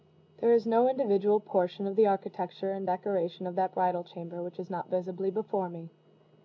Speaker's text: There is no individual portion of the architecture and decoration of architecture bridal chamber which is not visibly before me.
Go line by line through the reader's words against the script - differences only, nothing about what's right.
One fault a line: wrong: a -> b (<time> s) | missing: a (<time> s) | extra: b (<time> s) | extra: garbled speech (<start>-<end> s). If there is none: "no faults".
wrong: architecture -> that (3.6 s)